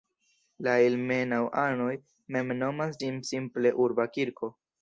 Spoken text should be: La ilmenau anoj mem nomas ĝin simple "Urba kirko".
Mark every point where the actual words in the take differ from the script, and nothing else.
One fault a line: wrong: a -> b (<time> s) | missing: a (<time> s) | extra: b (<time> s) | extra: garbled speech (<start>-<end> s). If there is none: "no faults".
no faults